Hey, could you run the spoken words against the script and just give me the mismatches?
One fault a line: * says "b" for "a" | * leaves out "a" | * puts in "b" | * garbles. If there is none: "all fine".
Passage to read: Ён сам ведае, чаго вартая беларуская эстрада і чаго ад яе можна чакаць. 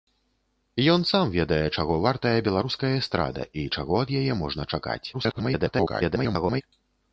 * garbles